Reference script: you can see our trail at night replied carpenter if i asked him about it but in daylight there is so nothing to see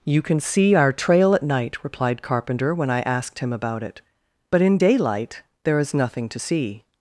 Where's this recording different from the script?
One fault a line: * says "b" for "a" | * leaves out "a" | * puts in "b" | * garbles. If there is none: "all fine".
* says "when" for "if"
* leaves out "so"